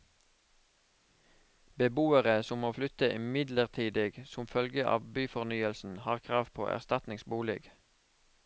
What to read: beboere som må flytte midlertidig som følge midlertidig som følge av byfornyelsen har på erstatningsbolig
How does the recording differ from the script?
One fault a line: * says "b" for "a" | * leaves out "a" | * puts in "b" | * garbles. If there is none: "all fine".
* leaves out "midlertidig som følge"
* puts in "krav"